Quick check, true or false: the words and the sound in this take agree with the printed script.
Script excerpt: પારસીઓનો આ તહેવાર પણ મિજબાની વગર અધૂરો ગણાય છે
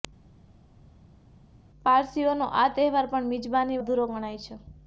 false